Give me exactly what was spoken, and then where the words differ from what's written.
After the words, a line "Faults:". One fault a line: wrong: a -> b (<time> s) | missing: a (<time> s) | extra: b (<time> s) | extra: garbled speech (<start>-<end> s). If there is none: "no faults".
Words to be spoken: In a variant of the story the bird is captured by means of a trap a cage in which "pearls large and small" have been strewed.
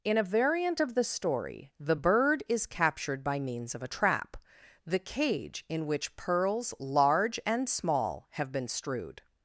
In a variant of the story the bird is captured by means of a trap the cage in which "pearls large and small" have been strewed.
Faults:
wrong: a -> the (4.9 s)